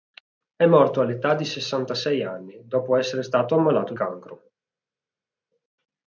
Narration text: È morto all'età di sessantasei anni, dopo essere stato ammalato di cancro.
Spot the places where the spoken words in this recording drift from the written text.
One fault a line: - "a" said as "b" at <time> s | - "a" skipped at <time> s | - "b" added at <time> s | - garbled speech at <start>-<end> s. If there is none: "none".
- "di" skipped at 3.9 s